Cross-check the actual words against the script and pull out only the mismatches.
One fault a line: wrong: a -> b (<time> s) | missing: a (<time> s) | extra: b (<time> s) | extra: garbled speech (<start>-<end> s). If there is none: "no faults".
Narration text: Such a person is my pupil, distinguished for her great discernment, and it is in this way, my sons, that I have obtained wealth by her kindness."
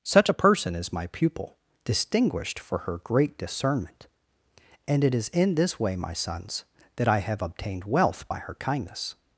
no faults